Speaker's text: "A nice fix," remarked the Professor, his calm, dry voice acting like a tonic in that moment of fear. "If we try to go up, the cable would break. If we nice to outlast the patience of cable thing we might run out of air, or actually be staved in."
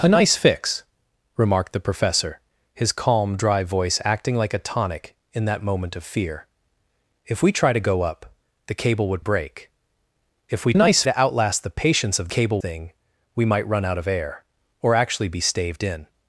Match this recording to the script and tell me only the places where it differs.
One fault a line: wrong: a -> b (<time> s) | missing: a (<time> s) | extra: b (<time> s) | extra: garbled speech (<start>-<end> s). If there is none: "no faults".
no faults